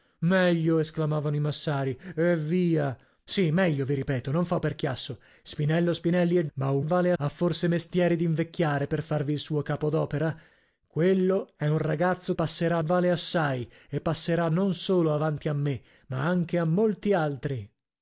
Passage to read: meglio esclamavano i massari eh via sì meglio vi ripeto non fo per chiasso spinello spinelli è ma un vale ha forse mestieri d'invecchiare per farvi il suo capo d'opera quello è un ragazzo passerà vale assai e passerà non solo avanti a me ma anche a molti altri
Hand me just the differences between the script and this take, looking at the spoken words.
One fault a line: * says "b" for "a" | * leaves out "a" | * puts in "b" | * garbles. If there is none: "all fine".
all fine